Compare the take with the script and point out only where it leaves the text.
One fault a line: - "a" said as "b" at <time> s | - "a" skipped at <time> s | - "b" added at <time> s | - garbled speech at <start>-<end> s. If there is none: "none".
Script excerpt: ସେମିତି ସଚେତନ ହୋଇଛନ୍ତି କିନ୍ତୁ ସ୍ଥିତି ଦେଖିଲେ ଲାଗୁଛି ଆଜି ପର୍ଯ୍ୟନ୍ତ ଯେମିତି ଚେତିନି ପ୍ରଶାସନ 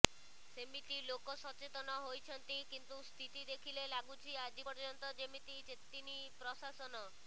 - "ଲୋକ" added at 1.0 s